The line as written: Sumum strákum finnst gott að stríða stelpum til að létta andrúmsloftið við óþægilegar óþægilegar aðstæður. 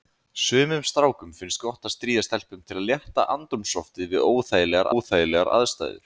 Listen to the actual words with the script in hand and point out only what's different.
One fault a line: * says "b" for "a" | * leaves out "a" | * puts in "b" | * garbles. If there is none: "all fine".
all fine